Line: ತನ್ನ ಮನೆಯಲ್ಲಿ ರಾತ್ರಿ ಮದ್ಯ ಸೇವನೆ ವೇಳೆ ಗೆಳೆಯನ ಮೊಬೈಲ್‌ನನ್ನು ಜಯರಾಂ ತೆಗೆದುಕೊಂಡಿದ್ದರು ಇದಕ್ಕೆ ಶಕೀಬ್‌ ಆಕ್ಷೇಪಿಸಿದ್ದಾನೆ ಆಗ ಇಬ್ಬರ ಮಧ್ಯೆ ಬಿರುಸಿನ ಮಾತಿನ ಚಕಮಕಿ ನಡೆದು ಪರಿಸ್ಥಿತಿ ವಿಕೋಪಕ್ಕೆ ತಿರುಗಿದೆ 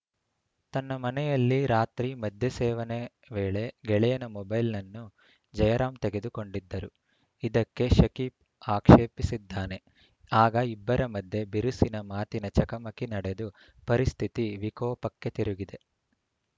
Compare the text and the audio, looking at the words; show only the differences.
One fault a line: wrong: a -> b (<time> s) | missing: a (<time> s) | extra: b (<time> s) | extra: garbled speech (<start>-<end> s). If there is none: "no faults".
no faults